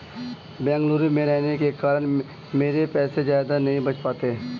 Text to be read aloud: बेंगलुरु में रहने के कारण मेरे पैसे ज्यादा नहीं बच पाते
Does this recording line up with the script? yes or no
yes